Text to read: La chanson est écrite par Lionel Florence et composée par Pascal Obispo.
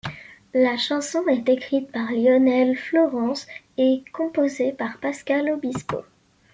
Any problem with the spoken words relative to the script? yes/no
no